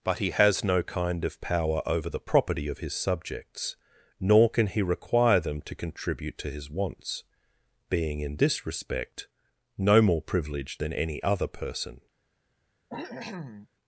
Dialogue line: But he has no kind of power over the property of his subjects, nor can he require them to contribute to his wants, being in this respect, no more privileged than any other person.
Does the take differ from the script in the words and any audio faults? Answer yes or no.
yes